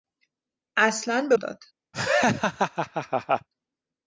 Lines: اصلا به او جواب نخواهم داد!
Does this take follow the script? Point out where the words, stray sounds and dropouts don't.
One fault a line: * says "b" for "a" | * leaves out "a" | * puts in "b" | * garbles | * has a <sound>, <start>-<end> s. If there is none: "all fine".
* leaves out "او جواب نخواهم"
* has a laugh, 1.9-3.5 s